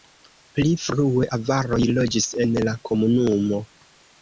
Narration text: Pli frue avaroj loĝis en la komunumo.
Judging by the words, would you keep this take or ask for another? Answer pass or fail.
pass